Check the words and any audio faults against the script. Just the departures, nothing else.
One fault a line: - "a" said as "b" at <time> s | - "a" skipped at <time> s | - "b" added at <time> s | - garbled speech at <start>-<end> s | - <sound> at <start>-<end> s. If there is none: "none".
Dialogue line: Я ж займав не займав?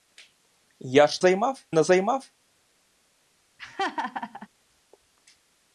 - laugh at 3.6-4.5 s